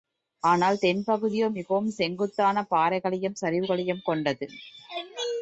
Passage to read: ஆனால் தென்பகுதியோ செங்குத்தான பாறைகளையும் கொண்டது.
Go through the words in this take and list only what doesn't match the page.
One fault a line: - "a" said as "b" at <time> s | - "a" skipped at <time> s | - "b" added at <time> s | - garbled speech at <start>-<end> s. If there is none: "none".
- "மிகவும்" added at 1.5 s
- "சரிவுகளையும்" added at 3.4 s